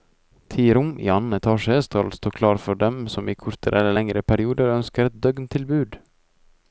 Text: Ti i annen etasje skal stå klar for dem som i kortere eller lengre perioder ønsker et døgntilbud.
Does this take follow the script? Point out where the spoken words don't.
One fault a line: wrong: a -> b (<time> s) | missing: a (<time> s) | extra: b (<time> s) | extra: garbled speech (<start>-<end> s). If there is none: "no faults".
extra: rom (0.8 s)